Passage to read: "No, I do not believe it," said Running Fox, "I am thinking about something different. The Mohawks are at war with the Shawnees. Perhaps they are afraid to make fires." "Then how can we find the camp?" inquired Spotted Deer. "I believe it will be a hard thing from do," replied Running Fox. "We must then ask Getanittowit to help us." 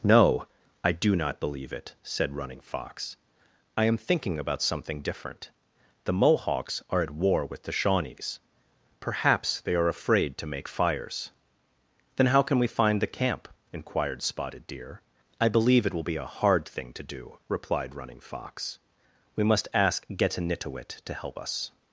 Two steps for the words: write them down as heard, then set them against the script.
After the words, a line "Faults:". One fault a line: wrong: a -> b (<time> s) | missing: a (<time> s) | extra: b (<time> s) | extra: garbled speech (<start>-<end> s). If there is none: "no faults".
"No, I do not believe it," said Running Fox, "I am thinking about something different. The Mohawks are at war with the Shawnees. Perhaps they are afraid to make fires." "Then how can we find the camp?" inquired Spotted Deer. "I believe it will be a hard thing to do," replied Running Fox. "We must ask Getanittowit to help us."
Faults:
wrong: from -> to (16.9 s)
missing: then (19.7 s)